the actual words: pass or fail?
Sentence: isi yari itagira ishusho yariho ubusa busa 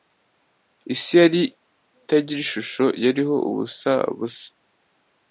pass